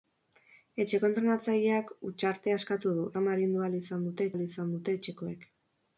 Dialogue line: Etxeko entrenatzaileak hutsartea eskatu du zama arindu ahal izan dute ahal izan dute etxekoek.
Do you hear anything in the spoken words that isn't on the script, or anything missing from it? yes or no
no